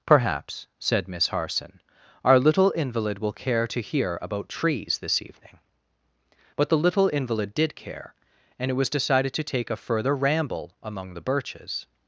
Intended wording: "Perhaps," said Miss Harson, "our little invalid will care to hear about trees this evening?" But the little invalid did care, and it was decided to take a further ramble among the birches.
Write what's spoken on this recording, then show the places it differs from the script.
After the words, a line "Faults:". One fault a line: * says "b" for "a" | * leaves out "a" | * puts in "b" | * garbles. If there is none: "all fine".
"Perhaps," said Miss Harson, "our little invalid will care to hear about trees this evening?" But the little invalid did care, and it was decided to take a further ramble among the birches.
Faults:
all fine